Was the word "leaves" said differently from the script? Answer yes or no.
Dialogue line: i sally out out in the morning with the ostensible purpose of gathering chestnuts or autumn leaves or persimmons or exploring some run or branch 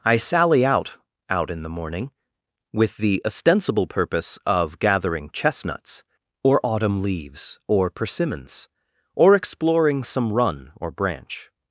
no